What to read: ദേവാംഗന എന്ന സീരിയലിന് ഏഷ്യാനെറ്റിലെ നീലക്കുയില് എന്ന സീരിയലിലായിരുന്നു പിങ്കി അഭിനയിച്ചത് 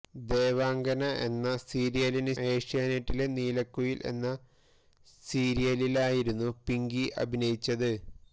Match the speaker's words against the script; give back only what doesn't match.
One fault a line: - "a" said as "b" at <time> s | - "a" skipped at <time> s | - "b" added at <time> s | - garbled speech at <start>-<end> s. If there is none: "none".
none